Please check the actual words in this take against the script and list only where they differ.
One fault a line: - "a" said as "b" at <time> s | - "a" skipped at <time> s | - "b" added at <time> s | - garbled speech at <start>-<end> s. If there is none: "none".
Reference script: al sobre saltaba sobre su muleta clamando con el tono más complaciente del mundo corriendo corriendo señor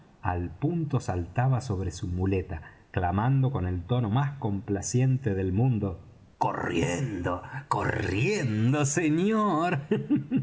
- "sobre" said as "punto" at 0.6 s